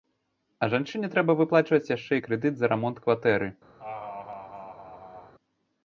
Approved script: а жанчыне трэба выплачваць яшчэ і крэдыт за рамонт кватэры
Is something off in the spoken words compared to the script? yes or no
no